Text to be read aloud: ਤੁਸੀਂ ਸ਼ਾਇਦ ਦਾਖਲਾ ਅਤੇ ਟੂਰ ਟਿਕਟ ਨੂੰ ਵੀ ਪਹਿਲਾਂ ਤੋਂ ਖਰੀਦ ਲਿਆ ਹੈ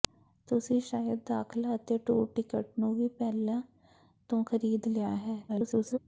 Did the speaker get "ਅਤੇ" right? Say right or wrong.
right